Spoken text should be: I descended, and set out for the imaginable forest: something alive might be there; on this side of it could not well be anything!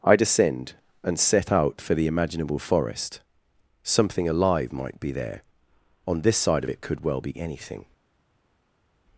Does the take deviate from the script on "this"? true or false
false